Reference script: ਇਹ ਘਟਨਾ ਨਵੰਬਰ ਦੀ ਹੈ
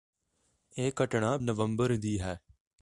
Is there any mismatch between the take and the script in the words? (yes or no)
no